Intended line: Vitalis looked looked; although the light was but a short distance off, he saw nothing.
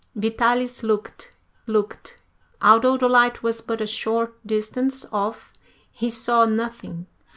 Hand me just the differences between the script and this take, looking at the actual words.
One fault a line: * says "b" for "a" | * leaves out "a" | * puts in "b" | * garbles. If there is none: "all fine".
all fine